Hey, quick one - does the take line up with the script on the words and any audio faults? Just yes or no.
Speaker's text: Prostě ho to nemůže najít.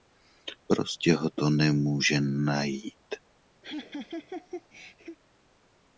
no